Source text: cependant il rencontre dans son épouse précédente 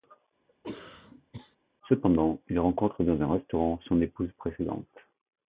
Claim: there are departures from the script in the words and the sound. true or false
true